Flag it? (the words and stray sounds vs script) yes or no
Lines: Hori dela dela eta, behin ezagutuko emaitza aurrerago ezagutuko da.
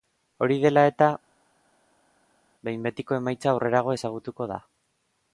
yes